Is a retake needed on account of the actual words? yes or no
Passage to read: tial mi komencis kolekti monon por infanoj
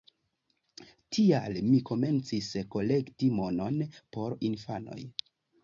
no